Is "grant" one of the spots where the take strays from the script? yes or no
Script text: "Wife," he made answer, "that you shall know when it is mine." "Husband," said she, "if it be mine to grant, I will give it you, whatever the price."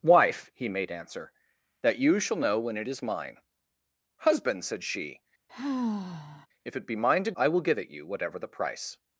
yes